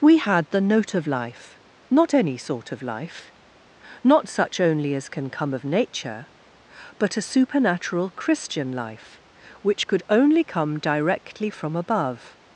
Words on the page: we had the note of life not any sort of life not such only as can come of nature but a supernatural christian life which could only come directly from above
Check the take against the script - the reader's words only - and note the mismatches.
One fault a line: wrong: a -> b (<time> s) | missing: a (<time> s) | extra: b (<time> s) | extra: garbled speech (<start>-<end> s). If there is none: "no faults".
no faults